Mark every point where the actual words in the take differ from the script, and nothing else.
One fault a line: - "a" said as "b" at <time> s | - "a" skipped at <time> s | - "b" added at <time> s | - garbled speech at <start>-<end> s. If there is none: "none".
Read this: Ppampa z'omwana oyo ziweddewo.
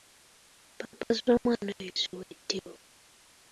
none